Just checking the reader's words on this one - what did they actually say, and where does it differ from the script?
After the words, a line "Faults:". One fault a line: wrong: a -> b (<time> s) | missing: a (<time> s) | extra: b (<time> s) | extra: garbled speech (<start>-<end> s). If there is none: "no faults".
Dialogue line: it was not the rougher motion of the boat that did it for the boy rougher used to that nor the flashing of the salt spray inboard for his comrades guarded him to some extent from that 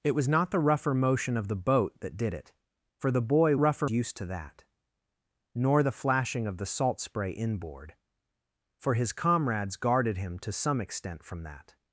it was not the rougher motion of the boat that did it for the boy rougher used to that nor the flashing of the salt spray inboard for his comrades guarded him to some extent from that
Faults:
no faults